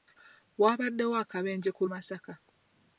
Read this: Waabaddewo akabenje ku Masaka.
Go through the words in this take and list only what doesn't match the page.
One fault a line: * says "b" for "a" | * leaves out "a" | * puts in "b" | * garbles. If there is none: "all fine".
all fine